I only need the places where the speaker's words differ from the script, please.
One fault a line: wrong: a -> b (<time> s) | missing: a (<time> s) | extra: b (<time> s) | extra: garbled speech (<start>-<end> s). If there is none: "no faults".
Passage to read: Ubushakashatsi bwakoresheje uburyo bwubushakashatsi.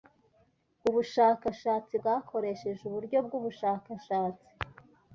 no faults